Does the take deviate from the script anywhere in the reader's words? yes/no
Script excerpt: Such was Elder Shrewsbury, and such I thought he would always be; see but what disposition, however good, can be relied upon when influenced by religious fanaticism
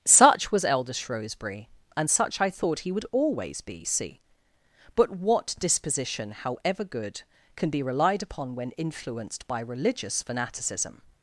no